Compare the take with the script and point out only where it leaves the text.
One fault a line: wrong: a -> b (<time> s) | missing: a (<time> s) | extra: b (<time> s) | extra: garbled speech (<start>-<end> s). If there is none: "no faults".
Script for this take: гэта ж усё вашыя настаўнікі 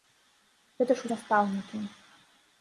missing: усё вашыя (1.1 s)